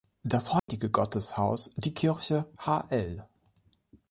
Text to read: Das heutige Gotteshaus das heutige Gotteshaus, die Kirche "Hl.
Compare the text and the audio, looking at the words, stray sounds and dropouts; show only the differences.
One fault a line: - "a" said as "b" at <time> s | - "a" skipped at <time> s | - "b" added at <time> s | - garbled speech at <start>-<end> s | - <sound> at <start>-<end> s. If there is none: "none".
- dropout at 0.6-0.7 s
- "das heutige Gotteshaus" skipped at 1.8 s